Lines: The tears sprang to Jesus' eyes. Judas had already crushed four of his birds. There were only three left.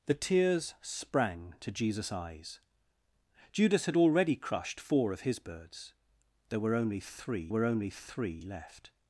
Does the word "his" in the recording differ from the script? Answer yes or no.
no